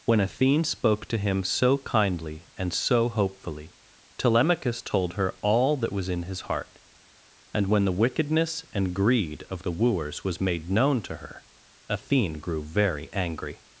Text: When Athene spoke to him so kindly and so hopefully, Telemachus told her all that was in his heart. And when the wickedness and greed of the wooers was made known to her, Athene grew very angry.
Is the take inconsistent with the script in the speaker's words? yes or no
no